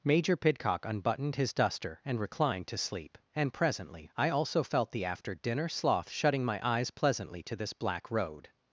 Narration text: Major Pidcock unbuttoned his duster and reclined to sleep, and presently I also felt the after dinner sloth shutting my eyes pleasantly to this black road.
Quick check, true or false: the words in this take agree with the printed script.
true